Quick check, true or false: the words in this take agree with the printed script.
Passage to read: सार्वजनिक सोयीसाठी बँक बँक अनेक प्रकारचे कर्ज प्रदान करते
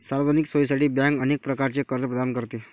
false